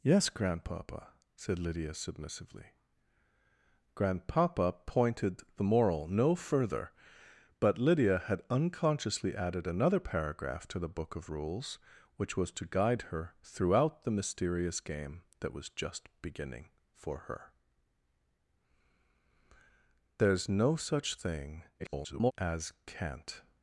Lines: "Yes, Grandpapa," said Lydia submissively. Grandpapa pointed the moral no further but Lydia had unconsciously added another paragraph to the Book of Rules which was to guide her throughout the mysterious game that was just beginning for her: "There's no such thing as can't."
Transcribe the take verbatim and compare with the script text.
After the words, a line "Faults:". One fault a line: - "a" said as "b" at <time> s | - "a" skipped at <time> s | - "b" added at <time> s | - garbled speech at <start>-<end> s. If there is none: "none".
"Yes, Grandpapa," said Lydia submissively. Grandpapa pointed the moral no further but Lydia had unconsciously added another paragraph to the Book of Rules which was to guide her throughout the mysterious game that was just beginning for her: "There's no such thing [garbled] as can't."
Faults:
- garbled speech at 21.8-22.3 s